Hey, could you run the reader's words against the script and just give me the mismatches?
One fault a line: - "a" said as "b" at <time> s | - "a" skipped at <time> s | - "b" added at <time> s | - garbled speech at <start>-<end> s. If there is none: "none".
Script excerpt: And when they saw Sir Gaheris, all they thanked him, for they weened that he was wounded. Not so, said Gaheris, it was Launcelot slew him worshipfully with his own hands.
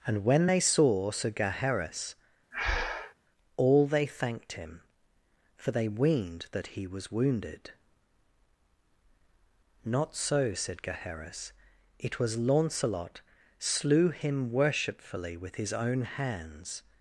none